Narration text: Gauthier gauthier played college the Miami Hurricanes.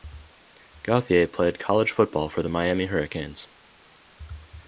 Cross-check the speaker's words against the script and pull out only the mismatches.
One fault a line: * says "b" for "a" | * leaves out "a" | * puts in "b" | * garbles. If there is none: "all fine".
* leaves out "gauthier"
* puts in "football for"